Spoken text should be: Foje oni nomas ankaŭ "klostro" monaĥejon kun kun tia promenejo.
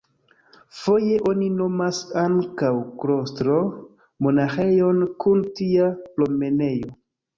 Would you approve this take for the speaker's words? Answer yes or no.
no